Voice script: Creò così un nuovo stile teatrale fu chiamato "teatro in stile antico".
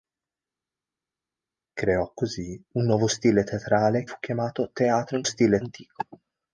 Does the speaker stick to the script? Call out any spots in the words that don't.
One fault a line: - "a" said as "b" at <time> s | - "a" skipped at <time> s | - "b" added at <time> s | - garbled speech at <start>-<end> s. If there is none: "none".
none